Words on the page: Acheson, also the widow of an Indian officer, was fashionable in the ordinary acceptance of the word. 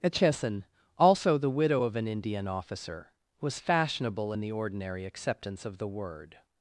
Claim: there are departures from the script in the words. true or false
false